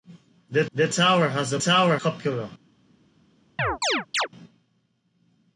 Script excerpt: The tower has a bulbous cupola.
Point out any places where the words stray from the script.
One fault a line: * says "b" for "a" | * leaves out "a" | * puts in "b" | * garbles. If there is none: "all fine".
* puts in "the"
* says "tower" for "bulbous"